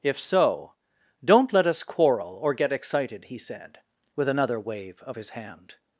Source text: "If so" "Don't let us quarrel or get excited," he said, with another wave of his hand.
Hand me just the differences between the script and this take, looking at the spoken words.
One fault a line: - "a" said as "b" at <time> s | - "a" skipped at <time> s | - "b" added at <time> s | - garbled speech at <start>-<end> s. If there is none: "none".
none